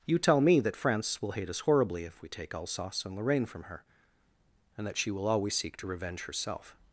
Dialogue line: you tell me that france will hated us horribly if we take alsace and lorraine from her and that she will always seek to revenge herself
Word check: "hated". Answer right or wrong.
wrong